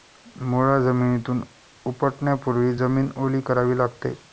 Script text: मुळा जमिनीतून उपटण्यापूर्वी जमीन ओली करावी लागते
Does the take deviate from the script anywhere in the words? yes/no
no